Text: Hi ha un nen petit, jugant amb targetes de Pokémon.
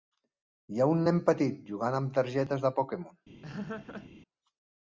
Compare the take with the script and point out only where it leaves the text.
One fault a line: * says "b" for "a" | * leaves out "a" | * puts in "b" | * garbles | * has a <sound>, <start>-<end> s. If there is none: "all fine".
* has a laugh, 3.4-4.1 s